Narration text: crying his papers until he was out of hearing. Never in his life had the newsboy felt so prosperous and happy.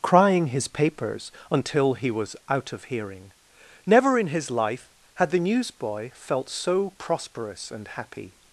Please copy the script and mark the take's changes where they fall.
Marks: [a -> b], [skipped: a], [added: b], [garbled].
crying his papers until he was out of hearing. Never in his life had the newsboy felt so prosperous and happy.